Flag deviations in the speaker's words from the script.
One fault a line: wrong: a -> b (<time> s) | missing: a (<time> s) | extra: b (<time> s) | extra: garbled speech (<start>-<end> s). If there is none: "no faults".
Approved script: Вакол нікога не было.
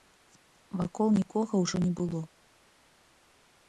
extra: ўжо (1.7 s)